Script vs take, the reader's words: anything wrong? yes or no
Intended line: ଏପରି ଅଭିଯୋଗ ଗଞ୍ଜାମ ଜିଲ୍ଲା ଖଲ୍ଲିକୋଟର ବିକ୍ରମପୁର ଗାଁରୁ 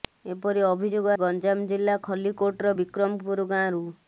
no